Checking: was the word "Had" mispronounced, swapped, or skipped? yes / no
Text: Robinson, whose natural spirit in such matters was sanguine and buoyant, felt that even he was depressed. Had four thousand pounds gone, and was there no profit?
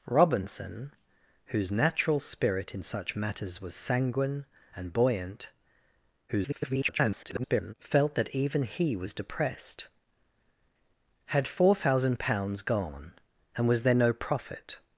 no